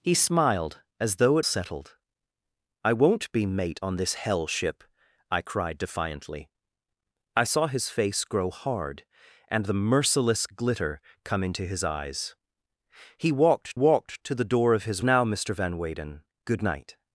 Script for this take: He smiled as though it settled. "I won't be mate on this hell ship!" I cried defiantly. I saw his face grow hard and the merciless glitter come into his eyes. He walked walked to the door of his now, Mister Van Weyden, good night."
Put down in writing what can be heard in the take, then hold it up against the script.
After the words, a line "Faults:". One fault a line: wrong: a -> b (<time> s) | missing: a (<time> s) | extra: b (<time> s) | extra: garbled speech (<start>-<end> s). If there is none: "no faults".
He smiled as though it settled. "I won't be mate on this hell ship!" I cried defiantly. I saw his face grow hard and the merciless glitter come into his eyes. He walked walked to the door of his now, Mister Van Weyden, good night."
Faults:
no faults